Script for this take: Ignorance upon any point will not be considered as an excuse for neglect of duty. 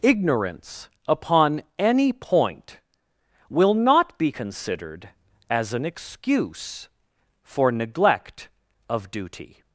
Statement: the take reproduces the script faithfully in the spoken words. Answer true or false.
true